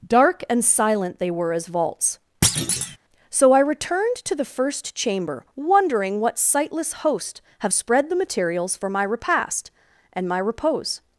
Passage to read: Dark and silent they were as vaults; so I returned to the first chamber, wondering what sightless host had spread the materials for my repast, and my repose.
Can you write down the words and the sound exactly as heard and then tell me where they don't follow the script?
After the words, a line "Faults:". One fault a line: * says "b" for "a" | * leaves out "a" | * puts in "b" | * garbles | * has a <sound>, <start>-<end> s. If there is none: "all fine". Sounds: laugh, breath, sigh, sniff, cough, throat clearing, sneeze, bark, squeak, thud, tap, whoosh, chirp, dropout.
Dark and silent they were as vaults; so I returned to the first chamber, wondering what sightless host have spread the materials for my repast, and my repose.
Faults:
* has a thud, 2.4-3.0 s
* says "have" for "had"